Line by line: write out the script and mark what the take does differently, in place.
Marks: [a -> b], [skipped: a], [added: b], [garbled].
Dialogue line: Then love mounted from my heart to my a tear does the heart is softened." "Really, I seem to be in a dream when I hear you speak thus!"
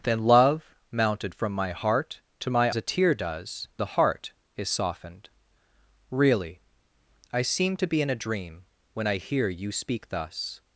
Then love mounted from my heart to my a tear does the heart is softened." "Really, I seem to be in a dream when I hear you speak thus!"